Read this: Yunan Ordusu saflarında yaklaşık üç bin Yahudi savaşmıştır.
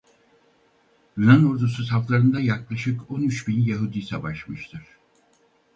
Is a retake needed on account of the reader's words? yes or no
yes